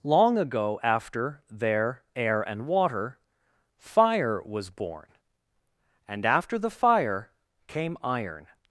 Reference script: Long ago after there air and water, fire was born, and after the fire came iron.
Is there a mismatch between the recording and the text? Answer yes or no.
no